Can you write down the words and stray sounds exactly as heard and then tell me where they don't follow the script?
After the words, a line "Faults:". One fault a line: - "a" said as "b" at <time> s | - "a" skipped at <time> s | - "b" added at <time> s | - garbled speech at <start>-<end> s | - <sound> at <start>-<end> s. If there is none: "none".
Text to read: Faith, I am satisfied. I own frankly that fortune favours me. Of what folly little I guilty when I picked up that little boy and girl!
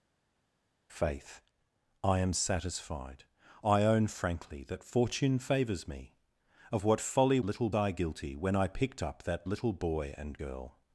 Faith, I am satisfied. I own frankly that fortune favours me. Of what folly little I guilty when I picked up that little boy and girl!
Faults:
none